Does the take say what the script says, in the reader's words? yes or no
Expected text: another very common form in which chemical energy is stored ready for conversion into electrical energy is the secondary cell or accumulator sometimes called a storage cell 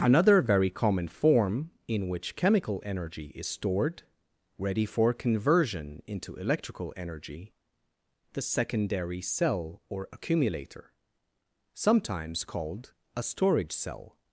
no